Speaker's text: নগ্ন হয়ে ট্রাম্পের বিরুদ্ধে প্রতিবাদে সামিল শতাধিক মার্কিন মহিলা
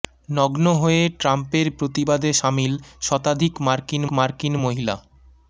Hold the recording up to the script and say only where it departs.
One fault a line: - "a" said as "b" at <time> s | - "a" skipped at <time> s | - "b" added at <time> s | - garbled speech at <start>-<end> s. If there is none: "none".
- "বিরুদ্ধে" skipped at 1.7 s
- "মার্কিন" added at 4.1 s